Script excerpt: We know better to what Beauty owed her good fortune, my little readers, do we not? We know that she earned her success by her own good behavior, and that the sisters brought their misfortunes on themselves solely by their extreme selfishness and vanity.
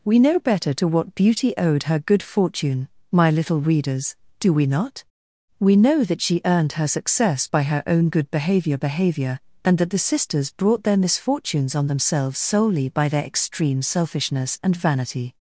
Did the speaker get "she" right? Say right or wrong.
right